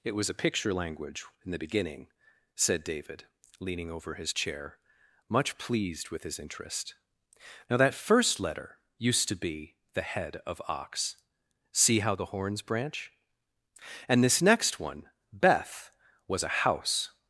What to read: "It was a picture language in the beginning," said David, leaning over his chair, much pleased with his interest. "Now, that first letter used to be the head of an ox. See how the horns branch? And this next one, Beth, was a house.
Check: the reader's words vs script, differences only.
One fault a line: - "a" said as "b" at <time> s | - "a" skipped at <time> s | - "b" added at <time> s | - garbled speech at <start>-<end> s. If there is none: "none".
- "an" skipped at 10.6 s